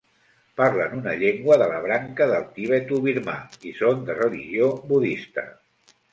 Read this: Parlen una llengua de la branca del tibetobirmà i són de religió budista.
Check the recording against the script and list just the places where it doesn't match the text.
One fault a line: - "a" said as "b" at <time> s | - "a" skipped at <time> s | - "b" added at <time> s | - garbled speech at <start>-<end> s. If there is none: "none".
none